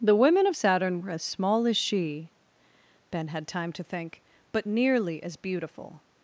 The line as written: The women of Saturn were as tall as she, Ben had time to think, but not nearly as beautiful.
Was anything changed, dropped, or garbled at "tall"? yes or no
yes